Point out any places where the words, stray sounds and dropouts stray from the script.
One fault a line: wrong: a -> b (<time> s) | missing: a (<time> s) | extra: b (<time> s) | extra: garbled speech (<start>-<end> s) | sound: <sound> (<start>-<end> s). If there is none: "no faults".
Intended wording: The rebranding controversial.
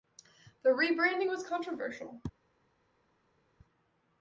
extra: was (1.3 s)